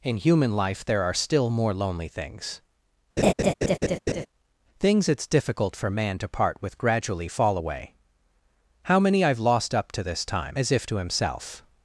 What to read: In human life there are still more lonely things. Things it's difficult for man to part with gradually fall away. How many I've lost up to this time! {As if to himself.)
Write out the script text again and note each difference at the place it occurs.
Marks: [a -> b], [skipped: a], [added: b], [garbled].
In human life there are still more lonely things. Things it's difficult for man to part with gradually fall away. How many I've lost up to this time! {As if to himself.)